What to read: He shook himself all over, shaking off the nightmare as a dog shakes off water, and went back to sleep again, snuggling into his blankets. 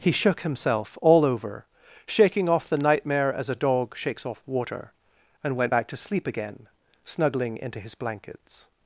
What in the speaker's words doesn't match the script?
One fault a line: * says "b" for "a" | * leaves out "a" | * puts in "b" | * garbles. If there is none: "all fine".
all fine